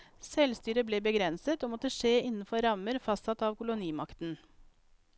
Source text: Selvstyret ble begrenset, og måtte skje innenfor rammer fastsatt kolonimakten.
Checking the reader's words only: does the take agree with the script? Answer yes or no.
no